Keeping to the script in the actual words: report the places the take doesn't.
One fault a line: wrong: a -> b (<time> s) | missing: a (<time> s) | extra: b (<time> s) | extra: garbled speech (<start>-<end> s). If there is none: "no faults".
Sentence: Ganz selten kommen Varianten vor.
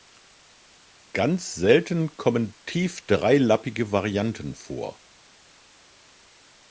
extra: tief dreilappige (2.6 s)